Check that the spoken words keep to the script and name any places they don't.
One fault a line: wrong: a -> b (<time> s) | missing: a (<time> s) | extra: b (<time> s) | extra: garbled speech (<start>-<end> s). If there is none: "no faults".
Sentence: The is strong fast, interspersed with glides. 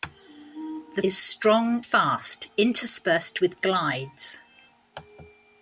no faults